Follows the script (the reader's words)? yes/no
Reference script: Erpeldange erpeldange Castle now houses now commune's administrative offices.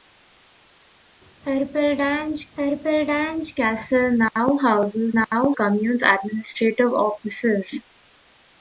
yes